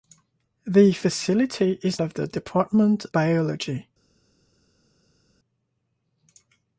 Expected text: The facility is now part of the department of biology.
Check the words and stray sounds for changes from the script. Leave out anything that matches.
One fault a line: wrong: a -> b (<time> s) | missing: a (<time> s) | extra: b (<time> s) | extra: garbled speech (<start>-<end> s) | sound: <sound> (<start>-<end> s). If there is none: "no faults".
missing: now part (2.0 s)
missing: of (3.0 s)